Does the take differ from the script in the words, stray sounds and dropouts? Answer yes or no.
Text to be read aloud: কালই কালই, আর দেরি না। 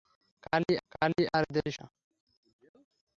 no